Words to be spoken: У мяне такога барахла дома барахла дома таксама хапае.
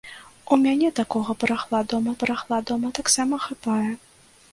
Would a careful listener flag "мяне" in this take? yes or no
no